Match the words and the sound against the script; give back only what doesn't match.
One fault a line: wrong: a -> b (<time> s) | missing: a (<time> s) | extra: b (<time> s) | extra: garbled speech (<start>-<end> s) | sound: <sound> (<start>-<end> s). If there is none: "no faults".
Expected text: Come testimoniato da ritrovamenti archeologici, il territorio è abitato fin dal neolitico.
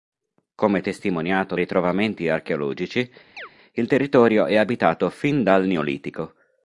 missing: da (1.5 s)
sound: chirp (3.4-3.5 s)